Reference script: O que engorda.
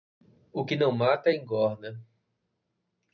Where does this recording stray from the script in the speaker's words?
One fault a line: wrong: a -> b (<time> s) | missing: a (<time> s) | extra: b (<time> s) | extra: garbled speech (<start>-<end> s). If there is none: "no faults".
extra: não mata (0.8 s)